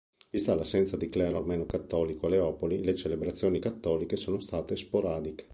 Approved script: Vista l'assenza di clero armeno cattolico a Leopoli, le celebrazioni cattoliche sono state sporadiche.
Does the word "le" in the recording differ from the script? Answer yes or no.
no